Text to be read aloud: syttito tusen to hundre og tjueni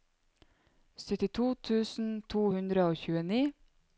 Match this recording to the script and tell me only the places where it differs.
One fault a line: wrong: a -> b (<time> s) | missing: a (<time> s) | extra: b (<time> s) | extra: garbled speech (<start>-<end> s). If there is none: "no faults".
no faults